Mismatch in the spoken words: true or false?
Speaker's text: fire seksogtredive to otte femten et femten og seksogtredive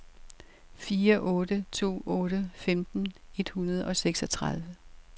true